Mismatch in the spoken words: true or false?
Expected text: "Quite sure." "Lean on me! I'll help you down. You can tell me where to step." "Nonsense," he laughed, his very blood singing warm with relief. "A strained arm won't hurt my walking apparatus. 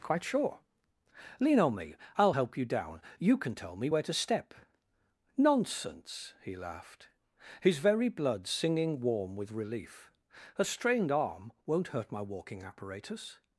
false